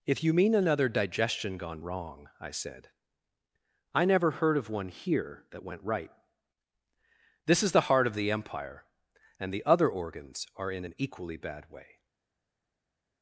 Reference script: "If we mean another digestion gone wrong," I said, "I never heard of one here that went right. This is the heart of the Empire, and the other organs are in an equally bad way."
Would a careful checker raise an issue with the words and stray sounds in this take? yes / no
yes